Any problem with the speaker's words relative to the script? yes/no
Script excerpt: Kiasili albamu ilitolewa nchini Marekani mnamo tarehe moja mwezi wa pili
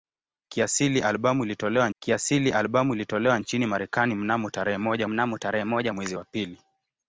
yes